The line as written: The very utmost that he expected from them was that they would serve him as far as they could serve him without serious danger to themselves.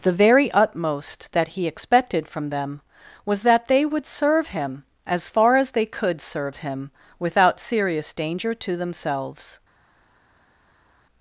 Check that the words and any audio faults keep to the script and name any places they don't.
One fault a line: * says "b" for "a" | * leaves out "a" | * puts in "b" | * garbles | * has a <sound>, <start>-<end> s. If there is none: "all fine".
all fine